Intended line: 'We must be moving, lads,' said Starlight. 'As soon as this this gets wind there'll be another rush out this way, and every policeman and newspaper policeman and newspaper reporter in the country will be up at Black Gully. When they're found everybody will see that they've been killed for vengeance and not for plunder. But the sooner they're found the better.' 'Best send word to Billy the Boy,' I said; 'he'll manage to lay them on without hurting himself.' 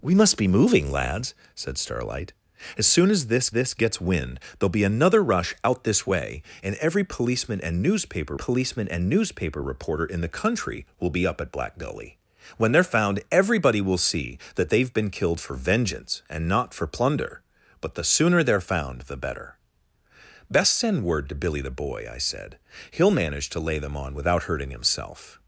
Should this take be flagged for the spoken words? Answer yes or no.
no